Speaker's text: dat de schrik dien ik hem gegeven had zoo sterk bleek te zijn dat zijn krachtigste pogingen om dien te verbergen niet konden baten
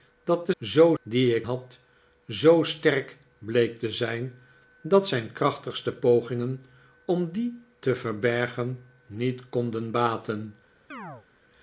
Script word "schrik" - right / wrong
wrong